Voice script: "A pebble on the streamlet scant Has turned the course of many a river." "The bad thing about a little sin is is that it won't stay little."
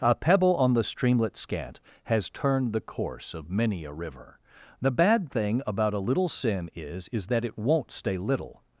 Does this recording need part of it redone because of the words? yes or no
no